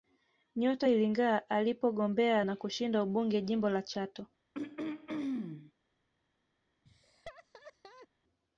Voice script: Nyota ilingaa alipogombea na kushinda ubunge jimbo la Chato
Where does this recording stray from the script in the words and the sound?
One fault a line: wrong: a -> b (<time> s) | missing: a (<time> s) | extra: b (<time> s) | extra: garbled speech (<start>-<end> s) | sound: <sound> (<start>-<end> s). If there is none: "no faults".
sound: throat clearing (4.5-5.7 s)
sound: laugh (6.9-8.1 s)